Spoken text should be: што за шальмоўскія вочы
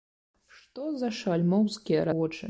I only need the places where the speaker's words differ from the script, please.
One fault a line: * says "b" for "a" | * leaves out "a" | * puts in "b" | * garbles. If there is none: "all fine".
all fine